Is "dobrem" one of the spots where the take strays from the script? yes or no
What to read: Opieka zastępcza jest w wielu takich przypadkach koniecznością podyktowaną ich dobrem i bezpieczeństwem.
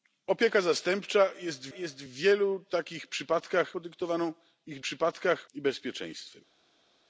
yes